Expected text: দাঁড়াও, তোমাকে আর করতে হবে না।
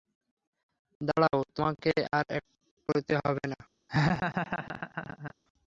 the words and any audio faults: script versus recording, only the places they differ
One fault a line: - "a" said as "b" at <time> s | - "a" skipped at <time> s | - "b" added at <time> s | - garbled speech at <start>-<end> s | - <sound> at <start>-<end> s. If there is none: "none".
- laugh at 3.9-5.3 s